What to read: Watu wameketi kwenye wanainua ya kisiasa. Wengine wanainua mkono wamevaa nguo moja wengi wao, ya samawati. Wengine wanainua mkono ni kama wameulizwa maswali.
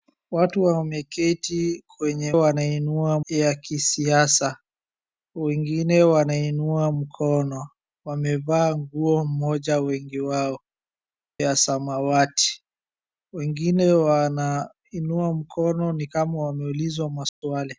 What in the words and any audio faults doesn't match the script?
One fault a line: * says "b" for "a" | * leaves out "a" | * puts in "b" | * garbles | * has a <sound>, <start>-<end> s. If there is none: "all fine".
* has a dropout, 17.3-17.4 s